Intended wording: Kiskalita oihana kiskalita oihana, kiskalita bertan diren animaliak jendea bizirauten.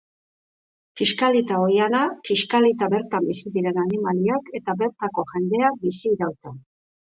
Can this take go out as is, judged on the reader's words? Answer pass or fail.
fail